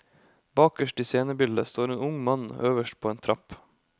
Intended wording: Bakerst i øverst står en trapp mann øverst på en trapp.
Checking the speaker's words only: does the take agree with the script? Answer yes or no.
no